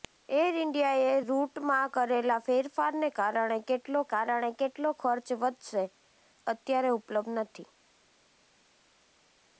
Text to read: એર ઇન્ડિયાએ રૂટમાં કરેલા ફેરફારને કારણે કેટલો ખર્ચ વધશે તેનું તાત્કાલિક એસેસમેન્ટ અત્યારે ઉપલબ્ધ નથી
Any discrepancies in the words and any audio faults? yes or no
yes